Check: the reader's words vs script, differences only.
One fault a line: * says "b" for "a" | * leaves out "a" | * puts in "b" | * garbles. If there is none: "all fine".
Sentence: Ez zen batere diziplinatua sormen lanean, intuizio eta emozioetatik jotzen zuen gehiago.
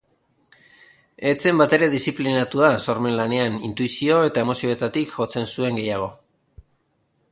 all fine